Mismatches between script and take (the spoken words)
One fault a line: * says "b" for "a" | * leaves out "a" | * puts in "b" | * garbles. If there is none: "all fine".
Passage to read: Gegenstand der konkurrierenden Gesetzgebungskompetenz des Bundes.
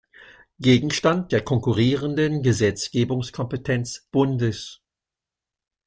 * leaves out "des"